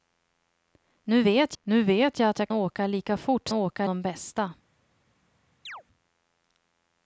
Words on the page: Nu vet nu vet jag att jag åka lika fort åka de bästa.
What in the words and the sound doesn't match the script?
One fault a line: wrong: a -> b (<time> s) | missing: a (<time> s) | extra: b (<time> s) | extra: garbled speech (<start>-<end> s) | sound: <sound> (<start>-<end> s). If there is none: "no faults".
sound: chirp (5.7-5.8 s)